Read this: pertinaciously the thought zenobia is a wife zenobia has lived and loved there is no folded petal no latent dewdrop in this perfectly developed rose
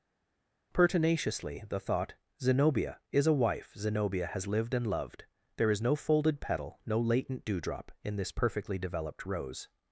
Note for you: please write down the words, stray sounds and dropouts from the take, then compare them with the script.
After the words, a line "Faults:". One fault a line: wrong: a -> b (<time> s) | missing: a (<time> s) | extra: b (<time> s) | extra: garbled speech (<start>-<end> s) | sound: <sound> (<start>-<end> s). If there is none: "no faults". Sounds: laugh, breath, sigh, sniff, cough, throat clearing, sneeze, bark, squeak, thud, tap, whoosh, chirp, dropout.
pertinaciously the thought zenobia is a wife zenobia has lived and loved there is no folded petal no latent dewdrop in this perfectly developed rose
Faults:
no faults